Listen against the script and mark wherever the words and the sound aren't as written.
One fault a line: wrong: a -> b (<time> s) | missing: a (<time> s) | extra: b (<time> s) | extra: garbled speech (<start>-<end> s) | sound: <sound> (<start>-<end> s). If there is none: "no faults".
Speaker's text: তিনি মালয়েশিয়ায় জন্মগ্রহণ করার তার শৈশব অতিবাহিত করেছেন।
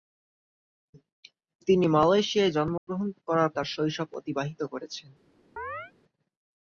sound: dropout (2.8-2.9 s)
sound: chirp (5.6-5.9 s)